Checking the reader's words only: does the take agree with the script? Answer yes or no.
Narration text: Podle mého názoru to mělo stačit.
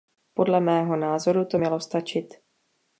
yes